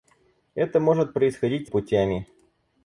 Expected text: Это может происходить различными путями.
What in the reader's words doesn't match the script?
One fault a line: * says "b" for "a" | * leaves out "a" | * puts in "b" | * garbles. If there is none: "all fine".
* leaves out "различными"